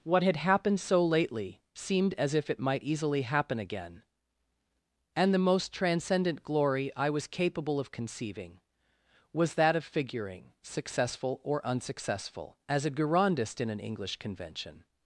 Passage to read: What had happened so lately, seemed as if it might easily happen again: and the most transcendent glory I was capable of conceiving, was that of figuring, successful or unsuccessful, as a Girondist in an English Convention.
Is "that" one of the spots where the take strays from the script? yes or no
no